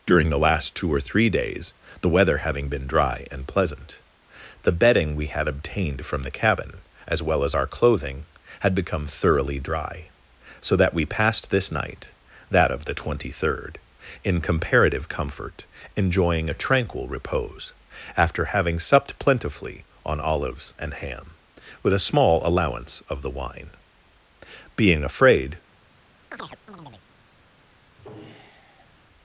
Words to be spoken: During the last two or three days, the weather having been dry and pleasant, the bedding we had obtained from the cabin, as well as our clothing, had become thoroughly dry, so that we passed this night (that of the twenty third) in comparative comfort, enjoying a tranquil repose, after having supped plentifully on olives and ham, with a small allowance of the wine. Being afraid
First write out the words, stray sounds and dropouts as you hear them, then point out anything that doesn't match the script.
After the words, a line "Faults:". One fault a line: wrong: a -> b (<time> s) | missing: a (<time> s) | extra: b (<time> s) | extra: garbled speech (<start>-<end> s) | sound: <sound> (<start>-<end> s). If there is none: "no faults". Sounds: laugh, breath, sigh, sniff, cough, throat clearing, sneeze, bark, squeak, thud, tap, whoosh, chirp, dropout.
During the last two or three days, the weather having been dry and pleasant, the bedding we had obtained from the cabin, as well as our clothing, had become thoroughly dry, so that we passed this night (that of the twenty third) in comparative comfort, enjoying a tranquil repose, after having supped plentifully on olives and ham, with a small allowance of the wine. Being afraid
Faults:
sound: chirp (26.3-27.1 s)
sound: sigh (27.9-29.0 s)